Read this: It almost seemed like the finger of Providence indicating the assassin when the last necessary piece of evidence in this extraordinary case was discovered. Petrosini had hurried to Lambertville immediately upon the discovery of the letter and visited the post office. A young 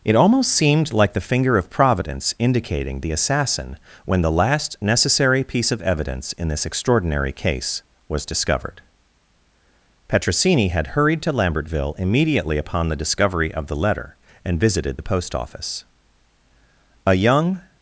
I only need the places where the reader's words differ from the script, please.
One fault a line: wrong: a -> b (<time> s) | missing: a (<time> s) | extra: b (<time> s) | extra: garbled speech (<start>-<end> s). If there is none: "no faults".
no faults